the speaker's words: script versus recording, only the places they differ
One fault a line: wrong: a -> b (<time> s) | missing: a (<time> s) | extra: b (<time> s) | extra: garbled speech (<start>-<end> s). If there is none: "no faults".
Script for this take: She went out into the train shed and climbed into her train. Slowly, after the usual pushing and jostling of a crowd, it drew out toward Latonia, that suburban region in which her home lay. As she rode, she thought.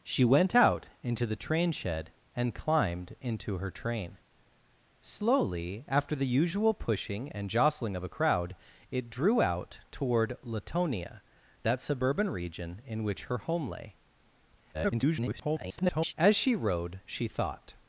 extra: garbled speech (14.7-16.1 s)